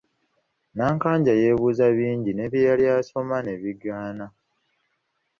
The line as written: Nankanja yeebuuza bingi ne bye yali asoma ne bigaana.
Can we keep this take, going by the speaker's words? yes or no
yes